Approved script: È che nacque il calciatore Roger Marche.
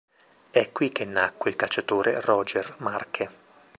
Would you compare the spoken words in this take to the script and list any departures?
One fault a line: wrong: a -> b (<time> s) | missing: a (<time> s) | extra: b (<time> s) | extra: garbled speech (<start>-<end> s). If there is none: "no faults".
extra: qui (0.7 s)